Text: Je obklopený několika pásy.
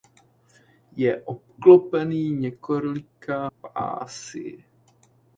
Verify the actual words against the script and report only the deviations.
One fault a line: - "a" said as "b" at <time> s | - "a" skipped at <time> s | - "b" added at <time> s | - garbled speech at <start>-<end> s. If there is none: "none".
none